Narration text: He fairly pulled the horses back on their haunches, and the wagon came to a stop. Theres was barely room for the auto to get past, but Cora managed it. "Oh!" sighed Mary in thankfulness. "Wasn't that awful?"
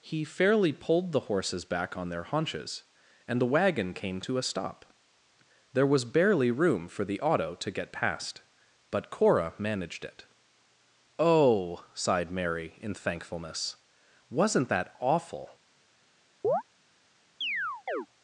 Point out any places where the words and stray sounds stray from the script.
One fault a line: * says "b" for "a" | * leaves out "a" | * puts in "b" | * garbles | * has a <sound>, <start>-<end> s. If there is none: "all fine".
* says "There" for "Theres"
* has a chirp, 16.4-16.6 s
* has a chirp, 17.4-18.1 s